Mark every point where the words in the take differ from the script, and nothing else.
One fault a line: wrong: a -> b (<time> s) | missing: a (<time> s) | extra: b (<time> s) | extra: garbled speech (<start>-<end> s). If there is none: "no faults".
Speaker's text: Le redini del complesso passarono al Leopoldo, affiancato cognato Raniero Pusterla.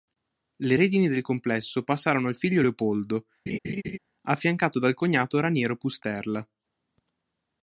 extra: figlio (2.4 s)
extra: dal (4.8 s)